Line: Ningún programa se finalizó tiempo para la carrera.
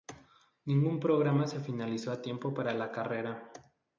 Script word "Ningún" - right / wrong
right